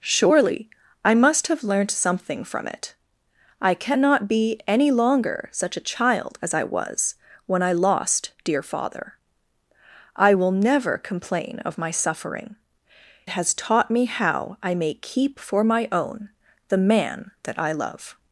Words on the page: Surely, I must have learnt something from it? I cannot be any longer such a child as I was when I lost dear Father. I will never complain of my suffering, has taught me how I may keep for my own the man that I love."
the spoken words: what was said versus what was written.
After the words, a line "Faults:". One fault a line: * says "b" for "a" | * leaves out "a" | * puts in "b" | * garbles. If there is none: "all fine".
Surely, I must have learnt something from it? I cannot be any longer such a child as I was when I lost dear Father. I will never complain of my suffering, has taught me how I may keep for my own the man that I love."
Faults:
all fine